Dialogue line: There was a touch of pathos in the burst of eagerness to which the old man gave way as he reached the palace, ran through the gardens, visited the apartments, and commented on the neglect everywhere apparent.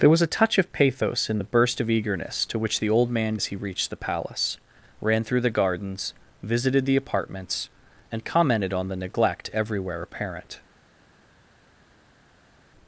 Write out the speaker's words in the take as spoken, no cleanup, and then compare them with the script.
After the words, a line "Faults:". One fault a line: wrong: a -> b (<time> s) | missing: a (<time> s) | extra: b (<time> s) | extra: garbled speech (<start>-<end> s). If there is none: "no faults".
There was a touch of pathos in the burst of eagerness to which the old man as he reached the palace, ran through the gardens, visited the apartments, and commented on the neglect everywhere apparent.
Faults:
missing: gave way (3.4 s)